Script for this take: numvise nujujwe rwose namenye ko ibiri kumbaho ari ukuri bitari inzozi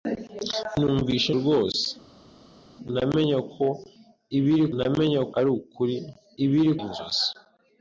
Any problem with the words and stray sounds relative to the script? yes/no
yes